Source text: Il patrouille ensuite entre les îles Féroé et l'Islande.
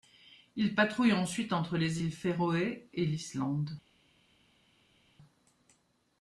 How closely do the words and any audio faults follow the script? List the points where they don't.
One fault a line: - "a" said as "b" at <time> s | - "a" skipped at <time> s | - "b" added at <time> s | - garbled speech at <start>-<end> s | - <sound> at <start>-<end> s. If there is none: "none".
none